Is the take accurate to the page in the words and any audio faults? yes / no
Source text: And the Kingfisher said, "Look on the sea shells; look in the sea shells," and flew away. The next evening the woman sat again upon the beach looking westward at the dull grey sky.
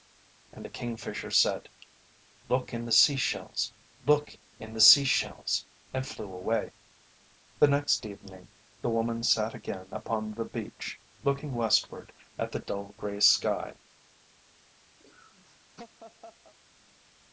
no